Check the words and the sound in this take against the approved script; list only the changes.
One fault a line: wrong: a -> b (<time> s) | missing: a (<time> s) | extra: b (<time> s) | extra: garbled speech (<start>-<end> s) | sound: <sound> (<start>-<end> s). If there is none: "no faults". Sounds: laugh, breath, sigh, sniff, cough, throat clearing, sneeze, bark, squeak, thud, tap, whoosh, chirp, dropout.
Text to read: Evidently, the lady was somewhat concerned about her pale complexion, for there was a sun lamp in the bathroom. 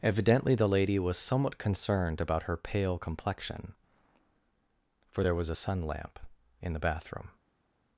no faults